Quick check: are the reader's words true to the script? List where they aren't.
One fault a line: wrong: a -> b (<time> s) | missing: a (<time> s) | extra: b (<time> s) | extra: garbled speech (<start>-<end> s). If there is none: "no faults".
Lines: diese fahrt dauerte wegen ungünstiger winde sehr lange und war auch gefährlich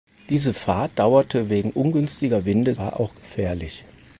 missing: sehr lange und (2.7 s)